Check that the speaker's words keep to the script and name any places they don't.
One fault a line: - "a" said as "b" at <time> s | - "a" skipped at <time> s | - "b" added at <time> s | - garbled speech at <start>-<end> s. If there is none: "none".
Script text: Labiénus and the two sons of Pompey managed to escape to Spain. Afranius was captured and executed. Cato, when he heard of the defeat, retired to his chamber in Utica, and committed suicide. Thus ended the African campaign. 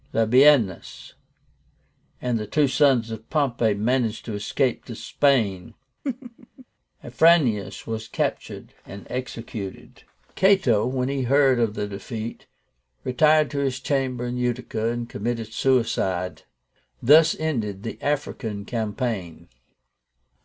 none